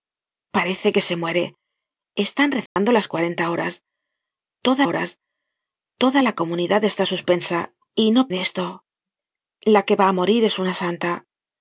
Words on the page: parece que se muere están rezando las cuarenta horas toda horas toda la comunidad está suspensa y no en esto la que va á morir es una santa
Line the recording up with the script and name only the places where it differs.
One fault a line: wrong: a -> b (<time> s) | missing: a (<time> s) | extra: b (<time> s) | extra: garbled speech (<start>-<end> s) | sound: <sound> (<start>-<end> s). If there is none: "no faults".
sound: dropout (2.7-2.8 s)